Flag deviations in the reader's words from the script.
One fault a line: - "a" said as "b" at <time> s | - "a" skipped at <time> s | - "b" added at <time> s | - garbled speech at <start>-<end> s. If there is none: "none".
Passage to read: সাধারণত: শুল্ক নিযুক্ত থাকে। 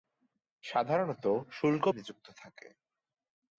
none